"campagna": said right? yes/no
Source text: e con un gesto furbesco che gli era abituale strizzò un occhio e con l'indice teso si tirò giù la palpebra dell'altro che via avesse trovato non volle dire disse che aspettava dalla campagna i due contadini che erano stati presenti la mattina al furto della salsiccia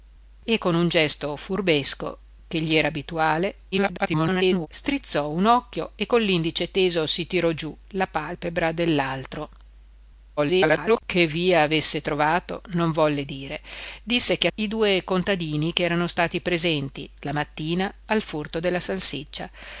no